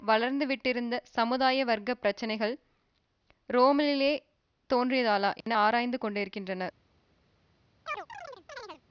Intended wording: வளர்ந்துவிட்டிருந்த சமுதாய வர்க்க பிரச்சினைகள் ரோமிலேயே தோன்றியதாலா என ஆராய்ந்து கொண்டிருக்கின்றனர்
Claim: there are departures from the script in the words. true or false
false